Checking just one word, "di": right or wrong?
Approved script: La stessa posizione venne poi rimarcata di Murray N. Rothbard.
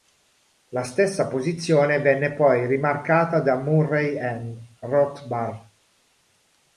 wrong